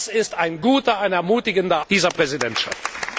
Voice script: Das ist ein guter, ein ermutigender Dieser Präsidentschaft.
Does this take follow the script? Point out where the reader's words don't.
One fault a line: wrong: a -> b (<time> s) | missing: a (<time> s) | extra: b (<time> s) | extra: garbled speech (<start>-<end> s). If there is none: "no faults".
no faults